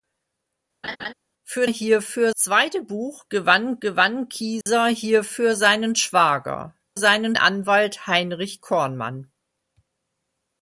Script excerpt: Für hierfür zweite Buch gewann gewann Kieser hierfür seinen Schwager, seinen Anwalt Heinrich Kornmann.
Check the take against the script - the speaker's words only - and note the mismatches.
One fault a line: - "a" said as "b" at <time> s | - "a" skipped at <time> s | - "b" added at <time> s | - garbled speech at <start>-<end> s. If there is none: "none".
none